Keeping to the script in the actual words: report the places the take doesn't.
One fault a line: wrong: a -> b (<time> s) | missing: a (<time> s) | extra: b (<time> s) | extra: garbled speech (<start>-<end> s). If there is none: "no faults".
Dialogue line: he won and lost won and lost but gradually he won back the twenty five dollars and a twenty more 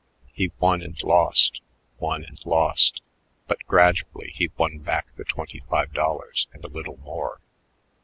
wrong: twenty -> little (6.7 s)